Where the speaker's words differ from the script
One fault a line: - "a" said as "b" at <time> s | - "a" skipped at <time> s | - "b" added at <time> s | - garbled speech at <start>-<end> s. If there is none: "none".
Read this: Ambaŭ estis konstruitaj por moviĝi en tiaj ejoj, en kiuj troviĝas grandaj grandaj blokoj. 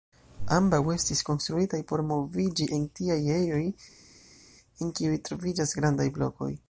- "grandaj" skipped at 6.1 s